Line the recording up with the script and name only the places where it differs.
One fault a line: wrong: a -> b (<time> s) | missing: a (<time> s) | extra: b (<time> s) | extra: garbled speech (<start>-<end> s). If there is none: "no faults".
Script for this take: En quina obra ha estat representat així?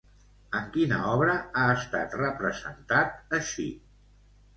no faults